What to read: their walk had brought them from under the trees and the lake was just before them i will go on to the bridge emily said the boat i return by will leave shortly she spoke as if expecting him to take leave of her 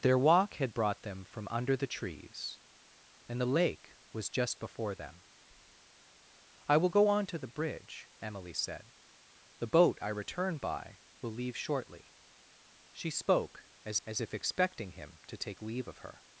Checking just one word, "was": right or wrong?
right